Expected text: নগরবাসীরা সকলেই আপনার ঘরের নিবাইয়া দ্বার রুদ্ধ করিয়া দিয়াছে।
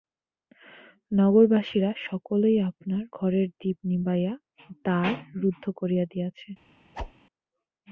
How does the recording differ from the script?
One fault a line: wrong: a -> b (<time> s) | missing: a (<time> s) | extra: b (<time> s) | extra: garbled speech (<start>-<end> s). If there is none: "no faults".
extra: দীপ (3.6 s)